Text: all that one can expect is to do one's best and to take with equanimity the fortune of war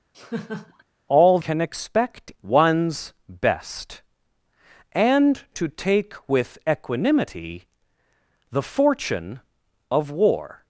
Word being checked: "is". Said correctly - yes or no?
no